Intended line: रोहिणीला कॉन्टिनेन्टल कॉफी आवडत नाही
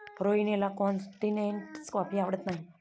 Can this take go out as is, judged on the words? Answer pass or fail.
pass